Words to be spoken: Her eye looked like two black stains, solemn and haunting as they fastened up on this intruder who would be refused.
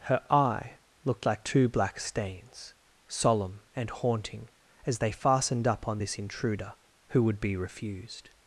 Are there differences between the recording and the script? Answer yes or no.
no